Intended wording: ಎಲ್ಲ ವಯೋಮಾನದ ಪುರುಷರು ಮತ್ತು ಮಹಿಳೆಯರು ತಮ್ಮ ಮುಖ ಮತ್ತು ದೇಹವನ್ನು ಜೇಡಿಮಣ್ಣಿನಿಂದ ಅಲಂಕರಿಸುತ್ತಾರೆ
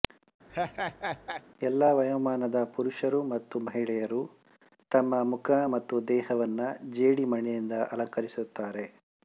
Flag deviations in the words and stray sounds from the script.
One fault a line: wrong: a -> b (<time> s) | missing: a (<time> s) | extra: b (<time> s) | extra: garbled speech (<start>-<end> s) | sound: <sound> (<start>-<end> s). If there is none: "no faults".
sound: laugh (0.5-1.4 s)